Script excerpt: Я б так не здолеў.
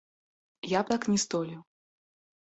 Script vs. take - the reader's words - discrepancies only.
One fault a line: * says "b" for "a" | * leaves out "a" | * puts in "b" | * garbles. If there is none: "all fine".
all fine